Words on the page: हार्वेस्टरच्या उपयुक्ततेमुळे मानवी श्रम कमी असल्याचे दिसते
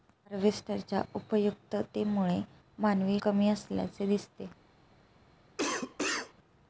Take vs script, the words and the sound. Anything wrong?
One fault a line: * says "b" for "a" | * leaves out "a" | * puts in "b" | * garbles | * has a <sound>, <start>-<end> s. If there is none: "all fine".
* leaves out "श्रम"
* has a cough, 5.6-6.3 s